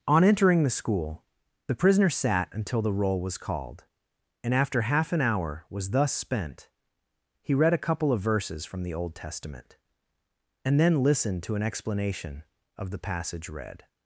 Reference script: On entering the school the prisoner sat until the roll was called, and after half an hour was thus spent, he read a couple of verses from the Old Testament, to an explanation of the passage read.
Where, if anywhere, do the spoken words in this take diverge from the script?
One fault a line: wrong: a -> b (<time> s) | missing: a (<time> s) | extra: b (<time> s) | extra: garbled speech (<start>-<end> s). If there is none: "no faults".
extra: and then listened (10.7 s)